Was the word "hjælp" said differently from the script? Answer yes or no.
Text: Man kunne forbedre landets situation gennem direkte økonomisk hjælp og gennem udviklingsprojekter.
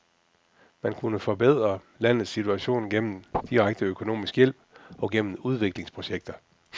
no